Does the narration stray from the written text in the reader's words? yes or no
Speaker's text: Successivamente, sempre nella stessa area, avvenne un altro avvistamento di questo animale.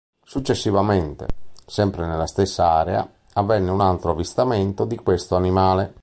no